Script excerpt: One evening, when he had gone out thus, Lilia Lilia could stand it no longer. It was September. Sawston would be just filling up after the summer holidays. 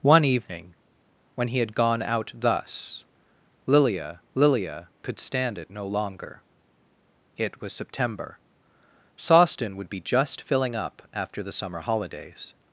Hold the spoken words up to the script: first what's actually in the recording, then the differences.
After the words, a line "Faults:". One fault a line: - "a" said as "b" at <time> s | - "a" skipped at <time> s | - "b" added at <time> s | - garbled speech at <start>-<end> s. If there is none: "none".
One evening, when he had gone out thus, Lilia Lilia could stand it no longer. It was September. Sawston would be just filling up after the summer holidays.
Faults:
none